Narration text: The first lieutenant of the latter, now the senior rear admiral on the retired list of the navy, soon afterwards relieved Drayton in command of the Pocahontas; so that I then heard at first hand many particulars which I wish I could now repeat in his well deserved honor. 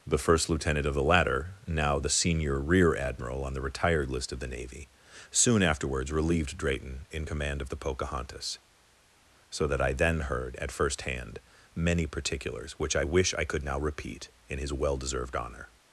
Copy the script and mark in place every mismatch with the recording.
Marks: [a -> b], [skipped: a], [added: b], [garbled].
The first lieutenant of the latter, now the senior rear admiral on the retired list of the navy, soon afterwards relieved Drayton in command of the Pocahontas; so that I then heard at first hand many particulars which I wish I could now repeat in his well deserved honor.